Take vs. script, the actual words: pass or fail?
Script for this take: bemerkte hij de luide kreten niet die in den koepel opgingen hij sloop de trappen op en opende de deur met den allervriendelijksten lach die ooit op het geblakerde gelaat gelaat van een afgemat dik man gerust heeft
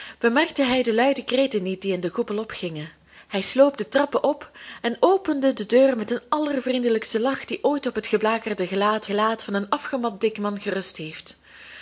pass